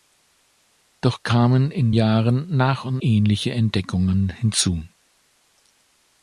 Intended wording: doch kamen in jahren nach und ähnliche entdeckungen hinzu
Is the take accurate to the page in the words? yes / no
yes